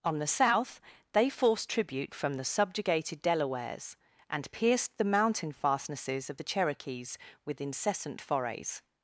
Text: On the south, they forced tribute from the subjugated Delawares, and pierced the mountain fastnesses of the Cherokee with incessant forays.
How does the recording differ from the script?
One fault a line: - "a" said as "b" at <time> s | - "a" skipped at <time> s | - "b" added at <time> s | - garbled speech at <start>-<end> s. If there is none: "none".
- "Cherokee" said as "Cherokees" at 6.4 s